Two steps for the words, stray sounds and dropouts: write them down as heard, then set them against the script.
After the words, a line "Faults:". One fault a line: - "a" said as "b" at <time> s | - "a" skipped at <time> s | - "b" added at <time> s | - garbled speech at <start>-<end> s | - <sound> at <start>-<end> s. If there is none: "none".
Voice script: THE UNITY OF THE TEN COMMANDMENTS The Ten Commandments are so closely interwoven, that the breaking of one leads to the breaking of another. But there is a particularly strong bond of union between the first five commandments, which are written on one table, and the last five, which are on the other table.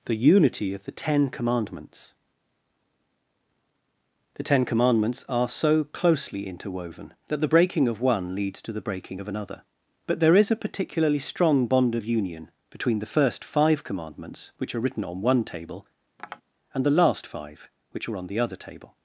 THE UNITY OF THE TEN COMMANDMENTS The Ten Commandments are so closely interwoven, that the breaking of one leads to the breaking of another. But there is a particularly strong bond of union between the first five commandments, which are written on one table, and the last five, which are on the other table.
Faults:
- tap at 16.2-16.4 s